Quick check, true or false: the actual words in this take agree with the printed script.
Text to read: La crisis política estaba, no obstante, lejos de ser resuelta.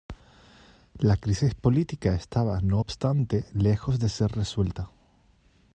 true